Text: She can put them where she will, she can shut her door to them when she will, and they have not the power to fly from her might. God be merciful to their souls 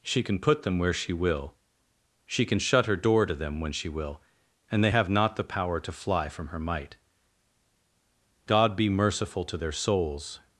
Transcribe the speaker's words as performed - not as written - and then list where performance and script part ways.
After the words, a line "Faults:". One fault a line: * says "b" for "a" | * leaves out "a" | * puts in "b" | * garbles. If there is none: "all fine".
She can put them where she will, she can shut her door to them when she will, and they have not the power to fly from her might. God be merciful to their souls
Faults:
all fine